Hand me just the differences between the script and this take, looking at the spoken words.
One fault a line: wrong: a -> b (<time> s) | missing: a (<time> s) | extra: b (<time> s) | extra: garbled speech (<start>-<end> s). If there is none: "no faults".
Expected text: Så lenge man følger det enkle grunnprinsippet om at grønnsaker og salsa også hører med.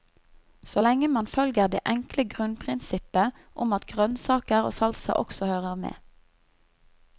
no faults